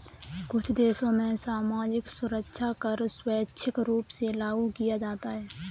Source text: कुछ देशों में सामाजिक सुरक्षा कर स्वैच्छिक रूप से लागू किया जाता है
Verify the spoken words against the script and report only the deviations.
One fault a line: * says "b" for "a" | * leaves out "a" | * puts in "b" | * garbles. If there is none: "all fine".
all fine